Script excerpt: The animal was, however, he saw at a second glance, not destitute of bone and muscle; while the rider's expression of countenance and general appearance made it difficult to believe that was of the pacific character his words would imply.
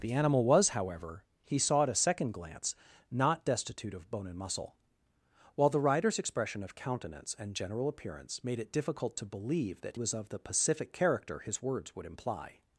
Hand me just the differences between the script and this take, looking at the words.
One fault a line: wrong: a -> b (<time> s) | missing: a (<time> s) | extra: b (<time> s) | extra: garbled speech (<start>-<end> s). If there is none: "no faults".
no faults